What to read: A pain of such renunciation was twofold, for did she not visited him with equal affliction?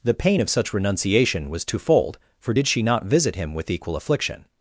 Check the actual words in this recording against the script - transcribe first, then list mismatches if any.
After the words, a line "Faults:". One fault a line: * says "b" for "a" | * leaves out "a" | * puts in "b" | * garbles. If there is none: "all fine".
The pain of such renunciation was twofold, for did she not visit him with equal affliction?
Faults:
* says "The" for "A"
* says "visit" for "visited"